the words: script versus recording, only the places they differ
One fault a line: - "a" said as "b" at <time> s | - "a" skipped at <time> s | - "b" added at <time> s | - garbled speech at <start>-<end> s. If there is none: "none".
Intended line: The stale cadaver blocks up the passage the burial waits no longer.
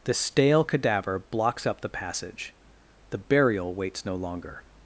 none